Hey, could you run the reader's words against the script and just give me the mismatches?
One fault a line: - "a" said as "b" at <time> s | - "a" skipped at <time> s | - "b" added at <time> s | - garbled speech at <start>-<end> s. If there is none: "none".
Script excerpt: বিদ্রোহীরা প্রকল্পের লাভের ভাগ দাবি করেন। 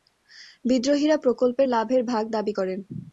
none